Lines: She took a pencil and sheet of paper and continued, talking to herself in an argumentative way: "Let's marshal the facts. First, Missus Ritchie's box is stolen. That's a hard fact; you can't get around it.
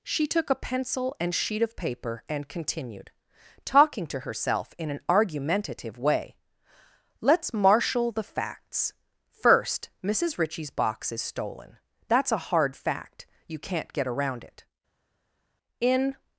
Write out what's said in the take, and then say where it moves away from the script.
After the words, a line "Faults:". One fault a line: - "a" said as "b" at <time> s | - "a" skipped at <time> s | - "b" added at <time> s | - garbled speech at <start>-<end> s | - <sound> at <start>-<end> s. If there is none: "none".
She took a pencil and sheet of paper and continued, talking to herself in an argumentative way: "Let's marshal the facts. First, Missus Ritchie's box is stolen. That's a hard fact; you can't get around it. In
Faults:
- "In" added at 15.8 s